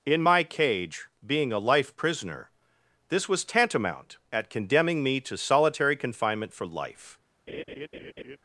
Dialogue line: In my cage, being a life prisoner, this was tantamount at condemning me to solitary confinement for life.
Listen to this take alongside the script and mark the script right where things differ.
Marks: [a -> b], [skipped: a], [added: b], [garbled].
In my cage, being a life prisoner, this was tantamount at condemning me to solitary confinement for life.